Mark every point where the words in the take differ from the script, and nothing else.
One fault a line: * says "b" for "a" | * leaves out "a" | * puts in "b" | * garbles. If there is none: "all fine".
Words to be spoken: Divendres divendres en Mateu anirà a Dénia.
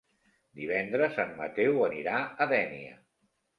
* leaves out "divendres"